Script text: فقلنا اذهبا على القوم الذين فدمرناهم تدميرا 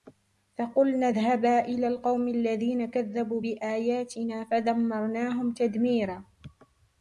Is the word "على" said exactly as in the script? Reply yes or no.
no